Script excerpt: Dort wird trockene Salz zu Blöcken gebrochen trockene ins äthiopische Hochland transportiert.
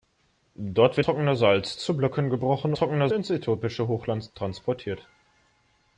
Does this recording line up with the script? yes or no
yes